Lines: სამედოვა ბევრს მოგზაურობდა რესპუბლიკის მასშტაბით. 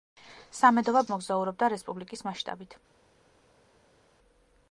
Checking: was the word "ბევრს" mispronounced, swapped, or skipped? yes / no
yes